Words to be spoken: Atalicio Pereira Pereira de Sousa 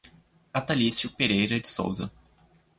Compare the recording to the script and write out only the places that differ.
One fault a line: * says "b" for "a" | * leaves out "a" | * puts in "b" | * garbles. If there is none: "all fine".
* leaves out "Pereira"